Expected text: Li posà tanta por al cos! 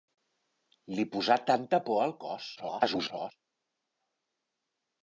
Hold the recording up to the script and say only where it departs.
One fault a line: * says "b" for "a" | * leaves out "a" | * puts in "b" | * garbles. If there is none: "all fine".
* garbles